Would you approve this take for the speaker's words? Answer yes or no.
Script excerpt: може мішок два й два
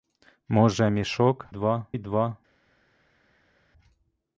yes